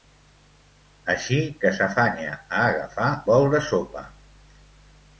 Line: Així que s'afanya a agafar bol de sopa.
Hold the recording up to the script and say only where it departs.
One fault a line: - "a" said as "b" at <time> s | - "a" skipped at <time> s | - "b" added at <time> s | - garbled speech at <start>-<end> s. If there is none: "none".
none